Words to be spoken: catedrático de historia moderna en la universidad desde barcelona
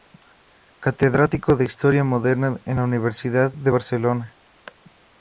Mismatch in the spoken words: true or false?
true